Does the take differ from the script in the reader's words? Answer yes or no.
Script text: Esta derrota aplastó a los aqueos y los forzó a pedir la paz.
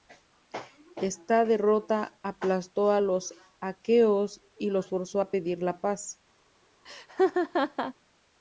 no